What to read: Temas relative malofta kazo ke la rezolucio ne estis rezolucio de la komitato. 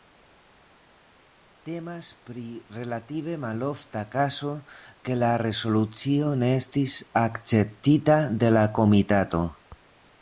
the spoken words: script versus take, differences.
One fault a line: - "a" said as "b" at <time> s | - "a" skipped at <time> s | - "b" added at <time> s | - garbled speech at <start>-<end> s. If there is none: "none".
- "pri" added at 2.3 s
- "rezolucio" said as "akceptita" at 7.2 s